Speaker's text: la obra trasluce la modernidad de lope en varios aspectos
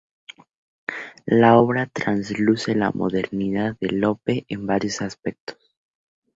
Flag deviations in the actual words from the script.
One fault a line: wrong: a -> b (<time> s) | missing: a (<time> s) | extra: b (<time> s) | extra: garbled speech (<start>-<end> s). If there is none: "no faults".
no faults